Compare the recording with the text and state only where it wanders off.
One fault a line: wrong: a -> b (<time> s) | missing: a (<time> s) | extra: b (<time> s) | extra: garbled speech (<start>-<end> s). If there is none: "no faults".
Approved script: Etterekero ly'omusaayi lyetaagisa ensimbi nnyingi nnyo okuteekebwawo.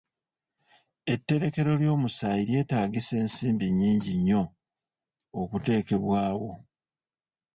no faults